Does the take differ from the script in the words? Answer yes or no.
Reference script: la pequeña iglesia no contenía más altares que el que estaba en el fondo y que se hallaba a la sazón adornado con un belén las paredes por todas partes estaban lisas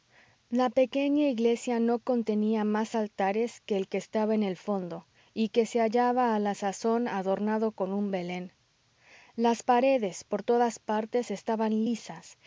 no